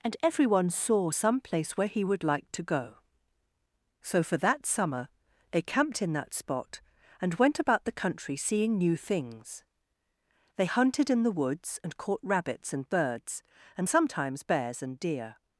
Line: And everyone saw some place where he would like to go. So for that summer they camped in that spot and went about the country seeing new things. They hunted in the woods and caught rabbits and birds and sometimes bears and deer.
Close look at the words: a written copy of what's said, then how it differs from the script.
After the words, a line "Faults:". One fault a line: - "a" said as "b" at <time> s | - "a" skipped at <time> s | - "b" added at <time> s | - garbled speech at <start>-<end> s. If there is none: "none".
And everyone saw some place where he would like to go. So for that summer they camped in that spot and went about the country seeing new things. They hunted in the woods and caught rabbits and birds and sometimes bears and deer.
Faults:
none